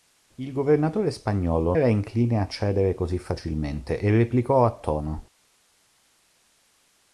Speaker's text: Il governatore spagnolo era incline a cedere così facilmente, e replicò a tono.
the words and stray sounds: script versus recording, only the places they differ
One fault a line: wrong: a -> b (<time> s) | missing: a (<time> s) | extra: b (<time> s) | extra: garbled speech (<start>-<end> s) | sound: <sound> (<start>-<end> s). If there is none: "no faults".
no faults